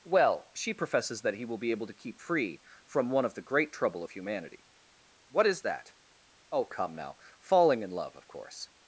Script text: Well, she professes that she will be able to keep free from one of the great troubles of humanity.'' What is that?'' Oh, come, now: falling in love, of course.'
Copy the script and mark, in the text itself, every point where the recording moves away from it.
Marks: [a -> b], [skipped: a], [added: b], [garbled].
Well, she professes that [she -> he] will be able to keep free from one of the great [troubles -> trouble] of humanity.'' What is that?'' Oh, come, now: falling in love, of course.'